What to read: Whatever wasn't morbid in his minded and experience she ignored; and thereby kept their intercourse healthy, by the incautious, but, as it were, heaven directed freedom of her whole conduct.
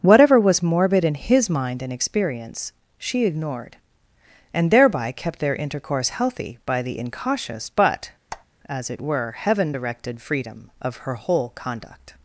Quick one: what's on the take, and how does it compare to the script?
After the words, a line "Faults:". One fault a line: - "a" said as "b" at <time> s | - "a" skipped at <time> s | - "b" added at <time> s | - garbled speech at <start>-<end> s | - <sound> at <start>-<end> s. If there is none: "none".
Whatever was morbid in his mind and experience she ignored; and thereby kept their intercourse healthy, by the incautious, but, as it were, heaven directed freedom of her whole conduct.
Faults:
- "wasn't" said as "was" at 0.4 s
- "minded" said as "mind" at 1.5 s
- squeak at 8.3-8.5 s